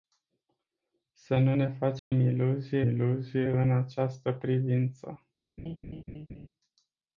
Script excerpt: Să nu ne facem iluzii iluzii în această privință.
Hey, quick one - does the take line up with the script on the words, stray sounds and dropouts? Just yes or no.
no